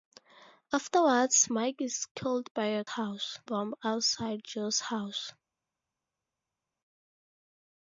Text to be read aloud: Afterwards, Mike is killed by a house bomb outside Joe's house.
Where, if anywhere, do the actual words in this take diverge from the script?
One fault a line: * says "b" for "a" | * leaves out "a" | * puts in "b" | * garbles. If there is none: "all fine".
all fine